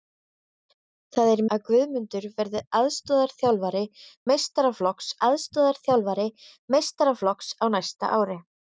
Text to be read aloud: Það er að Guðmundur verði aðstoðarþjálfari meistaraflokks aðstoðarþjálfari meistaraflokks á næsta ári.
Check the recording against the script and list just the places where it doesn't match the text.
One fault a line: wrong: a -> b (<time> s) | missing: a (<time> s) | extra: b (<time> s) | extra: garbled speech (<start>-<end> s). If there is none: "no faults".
no faults